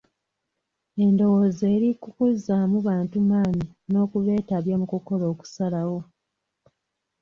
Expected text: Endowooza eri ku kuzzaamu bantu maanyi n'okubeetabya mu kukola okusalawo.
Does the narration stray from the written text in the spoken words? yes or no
no